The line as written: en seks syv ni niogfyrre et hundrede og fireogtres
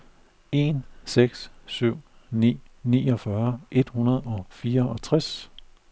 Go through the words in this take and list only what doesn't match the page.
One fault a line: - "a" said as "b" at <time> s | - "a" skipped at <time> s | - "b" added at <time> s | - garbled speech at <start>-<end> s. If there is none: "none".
none